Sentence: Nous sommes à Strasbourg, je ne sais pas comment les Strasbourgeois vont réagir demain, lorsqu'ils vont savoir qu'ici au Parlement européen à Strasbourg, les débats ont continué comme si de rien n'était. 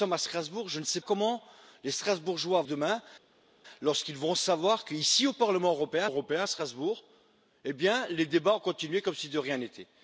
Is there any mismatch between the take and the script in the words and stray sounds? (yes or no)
yes